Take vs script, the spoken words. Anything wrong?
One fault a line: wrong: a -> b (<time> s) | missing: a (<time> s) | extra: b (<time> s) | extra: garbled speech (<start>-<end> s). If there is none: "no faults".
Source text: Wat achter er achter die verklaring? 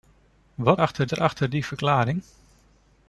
no faults